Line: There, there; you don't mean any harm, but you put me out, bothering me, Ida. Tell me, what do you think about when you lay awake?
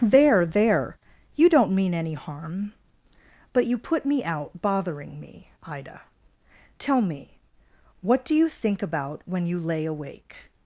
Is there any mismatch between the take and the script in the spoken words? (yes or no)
no